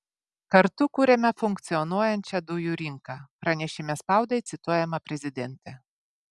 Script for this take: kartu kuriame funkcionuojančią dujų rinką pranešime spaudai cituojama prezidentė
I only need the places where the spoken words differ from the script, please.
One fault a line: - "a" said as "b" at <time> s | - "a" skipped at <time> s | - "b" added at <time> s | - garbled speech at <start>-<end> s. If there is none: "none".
none